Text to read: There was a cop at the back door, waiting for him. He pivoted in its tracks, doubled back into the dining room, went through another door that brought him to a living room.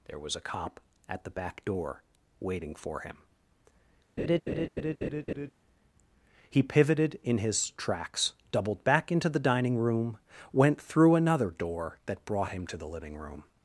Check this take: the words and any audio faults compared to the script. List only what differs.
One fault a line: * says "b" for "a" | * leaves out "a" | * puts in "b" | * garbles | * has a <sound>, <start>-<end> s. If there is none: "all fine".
* has a laugh, 4.2-5.5 s
* says "his" for "its"
* says "the" for "a"